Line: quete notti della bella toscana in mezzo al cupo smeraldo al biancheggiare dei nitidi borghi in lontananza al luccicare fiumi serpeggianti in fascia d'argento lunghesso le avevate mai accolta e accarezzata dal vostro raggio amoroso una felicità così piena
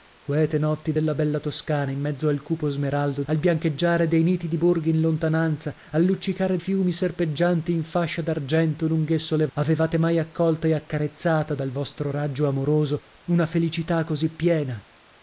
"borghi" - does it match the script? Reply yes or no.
yes